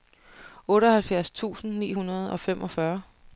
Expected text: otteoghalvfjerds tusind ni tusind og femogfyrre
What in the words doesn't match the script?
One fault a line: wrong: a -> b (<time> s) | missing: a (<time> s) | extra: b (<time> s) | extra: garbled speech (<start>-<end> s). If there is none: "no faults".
wrong: tusind -> hundrede (1.9 s)